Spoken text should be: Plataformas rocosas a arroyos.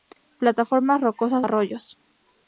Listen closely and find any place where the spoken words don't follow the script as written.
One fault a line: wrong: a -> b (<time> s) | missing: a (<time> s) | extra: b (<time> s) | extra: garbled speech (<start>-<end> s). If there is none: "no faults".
no faults